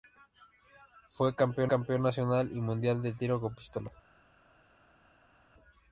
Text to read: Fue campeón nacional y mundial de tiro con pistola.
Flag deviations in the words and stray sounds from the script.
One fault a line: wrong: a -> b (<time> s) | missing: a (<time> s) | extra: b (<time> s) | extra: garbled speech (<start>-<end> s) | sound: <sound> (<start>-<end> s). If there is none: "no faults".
extra: campeón (1.7 s)